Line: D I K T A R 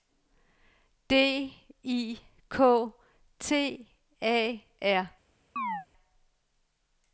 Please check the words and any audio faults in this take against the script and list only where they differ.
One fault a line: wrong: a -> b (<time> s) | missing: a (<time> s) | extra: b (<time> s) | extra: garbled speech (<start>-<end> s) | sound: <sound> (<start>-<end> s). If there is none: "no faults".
sound: chirp (5.6-5.9 s)